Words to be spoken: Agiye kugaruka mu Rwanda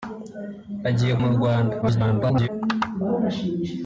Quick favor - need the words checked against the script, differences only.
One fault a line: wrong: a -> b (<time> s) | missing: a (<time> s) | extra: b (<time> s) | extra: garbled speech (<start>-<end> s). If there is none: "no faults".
missing: kugaruka (1.1 s)
extra: garbled speech (1.8-2.5 s)